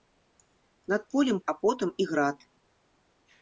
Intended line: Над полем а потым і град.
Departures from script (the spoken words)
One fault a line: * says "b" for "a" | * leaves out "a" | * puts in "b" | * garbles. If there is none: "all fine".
all fine